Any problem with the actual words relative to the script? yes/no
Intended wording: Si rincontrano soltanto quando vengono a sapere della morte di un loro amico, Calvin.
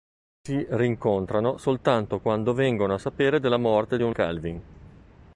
yes